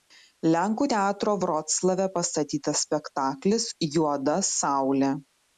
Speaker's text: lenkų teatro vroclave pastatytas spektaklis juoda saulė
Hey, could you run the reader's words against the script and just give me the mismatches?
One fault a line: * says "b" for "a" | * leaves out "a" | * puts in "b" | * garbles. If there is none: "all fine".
all fine